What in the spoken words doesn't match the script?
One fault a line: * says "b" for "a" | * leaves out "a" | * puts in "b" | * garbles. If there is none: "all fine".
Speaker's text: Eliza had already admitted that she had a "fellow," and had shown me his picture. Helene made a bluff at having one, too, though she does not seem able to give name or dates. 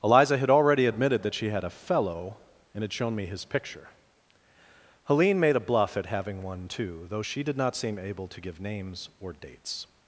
* says "did" for "does"
* says "names" for "name"